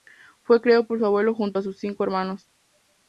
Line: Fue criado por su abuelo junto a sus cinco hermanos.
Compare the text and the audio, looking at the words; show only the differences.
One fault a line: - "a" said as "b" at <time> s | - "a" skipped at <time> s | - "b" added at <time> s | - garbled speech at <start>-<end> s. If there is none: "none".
none